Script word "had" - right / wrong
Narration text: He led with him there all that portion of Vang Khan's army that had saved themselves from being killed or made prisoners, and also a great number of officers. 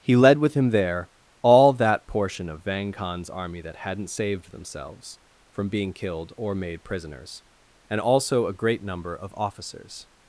wrong